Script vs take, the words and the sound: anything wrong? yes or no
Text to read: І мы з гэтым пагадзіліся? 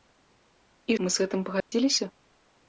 yes